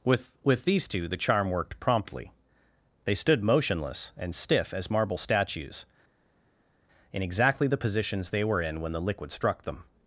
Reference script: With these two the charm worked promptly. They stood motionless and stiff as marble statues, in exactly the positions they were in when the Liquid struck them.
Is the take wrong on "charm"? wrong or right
right